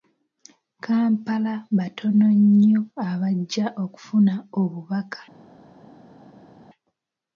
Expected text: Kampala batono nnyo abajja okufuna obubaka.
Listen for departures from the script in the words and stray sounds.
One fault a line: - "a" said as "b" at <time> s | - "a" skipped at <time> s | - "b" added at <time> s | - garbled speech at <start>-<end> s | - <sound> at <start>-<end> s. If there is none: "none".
none